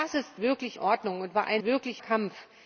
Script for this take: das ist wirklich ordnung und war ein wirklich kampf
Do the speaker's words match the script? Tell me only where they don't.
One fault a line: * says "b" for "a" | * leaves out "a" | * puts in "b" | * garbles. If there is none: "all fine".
all fine